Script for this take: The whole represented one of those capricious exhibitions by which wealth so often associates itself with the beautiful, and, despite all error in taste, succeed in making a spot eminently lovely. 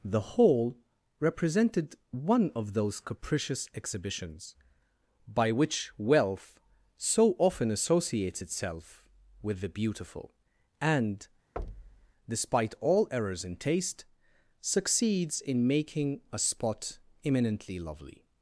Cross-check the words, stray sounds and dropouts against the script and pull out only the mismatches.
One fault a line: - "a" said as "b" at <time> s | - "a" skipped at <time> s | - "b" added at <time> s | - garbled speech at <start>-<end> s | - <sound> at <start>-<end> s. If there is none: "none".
- thud at 11.6-12.1 s
- "error" said as "errors" at 13.1 s
- "succeed" said as "succeeds" at 14.6 s